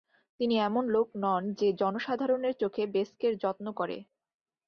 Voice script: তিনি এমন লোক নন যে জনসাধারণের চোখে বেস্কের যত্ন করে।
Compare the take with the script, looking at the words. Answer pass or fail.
pass